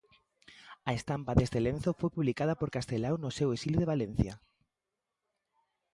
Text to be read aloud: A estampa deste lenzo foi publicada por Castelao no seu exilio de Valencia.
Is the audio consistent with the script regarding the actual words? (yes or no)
yes